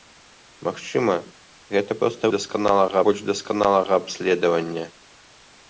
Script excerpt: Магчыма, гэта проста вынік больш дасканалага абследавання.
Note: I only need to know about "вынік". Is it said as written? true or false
false